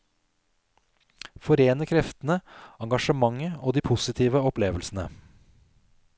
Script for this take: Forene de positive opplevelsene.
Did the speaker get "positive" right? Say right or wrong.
right